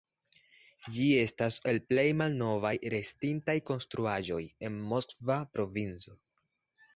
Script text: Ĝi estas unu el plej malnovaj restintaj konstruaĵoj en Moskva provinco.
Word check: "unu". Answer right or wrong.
wrong